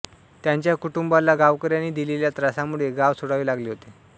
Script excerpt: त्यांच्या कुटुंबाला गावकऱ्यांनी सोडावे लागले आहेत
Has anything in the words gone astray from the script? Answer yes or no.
yes